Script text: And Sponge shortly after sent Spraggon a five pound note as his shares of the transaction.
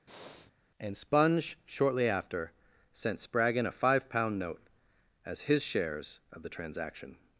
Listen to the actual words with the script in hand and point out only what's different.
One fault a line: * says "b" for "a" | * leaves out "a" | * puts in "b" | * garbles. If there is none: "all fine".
all fine